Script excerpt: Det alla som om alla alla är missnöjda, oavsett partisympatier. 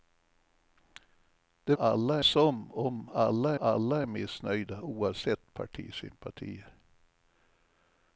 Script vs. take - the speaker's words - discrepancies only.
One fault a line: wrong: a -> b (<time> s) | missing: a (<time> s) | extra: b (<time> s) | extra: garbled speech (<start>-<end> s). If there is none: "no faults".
no faults